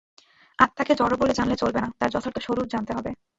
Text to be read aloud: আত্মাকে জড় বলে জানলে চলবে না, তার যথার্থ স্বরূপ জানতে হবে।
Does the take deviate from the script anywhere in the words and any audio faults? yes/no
no